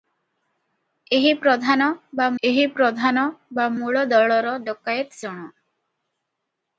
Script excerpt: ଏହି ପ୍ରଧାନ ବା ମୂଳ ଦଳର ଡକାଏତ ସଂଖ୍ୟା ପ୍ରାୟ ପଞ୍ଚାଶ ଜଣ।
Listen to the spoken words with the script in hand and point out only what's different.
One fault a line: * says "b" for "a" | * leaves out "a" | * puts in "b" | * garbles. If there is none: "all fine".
* puts in "ଏହି ପ୍ରଧାନ ବା"
* leaves out "ସଂଖ୍ୟା ପ୍ରାୟ ପଞ୍ଚାଶ"